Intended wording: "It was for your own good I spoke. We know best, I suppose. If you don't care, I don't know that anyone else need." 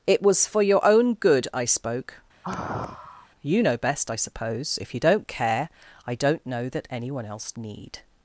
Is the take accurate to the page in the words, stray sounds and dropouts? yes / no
no